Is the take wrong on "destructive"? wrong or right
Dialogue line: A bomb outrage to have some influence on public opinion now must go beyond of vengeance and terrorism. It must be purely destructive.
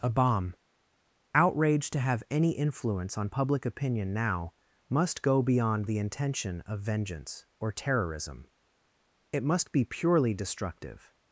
right